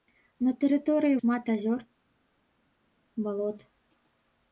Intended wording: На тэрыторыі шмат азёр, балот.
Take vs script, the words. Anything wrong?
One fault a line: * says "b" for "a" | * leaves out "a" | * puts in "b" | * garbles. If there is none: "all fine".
all fine